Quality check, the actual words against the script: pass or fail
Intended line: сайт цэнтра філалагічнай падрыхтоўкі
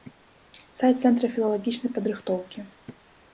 pass